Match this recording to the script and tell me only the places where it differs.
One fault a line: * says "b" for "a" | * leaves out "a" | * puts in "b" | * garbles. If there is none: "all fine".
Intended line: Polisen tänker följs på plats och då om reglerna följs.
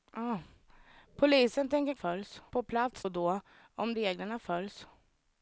all fine